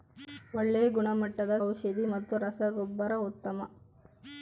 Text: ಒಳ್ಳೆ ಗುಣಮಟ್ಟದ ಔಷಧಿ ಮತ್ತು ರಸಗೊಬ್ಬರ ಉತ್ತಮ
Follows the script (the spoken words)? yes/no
yes